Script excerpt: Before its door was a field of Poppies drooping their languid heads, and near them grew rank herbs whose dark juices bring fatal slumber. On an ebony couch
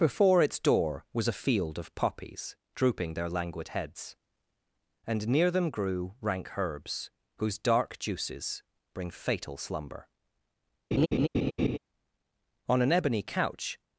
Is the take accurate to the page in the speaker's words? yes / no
yes